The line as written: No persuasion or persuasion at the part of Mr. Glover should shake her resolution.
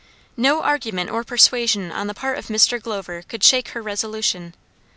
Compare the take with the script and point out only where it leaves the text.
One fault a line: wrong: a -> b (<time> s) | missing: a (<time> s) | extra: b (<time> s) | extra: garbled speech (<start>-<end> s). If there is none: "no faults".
wrong: persuasion -> argument (0.6 s)
wrong: at -> on (1.9 s)
wrong: should -> could (3.3 s)